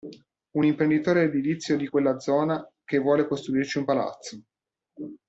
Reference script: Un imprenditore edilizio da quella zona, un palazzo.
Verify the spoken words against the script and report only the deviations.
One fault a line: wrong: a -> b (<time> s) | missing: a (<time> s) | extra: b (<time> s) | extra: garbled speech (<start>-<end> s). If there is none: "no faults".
wrong: da -> di (1.7 s)
extra: che vuole costruirci (2.8 s)